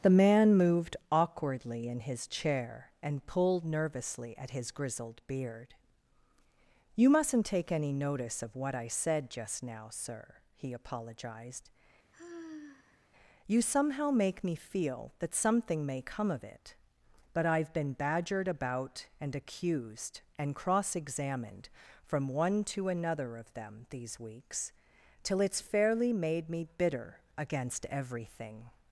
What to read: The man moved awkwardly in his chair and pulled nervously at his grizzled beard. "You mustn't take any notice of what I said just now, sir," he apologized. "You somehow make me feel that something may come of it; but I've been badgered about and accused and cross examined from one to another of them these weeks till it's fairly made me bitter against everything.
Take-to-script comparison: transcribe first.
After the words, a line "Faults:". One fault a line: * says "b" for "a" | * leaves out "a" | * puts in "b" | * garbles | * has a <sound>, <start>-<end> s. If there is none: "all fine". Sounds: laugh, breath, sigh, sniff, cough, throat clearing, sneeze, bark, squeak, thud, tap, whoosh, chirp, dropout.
The man moved awkwardly in his chair and pulled nervously at his grizzled beard. "You mustn't take any notice of what I said just now, sir," he apologized. "You somehow make me feel that something may come of it; but I've been badgered about and accused and cross examined from one to another of them these weeks till it's fairly made me bitter against everything.
Faults:
* has a sigh, 12.1-13.1 s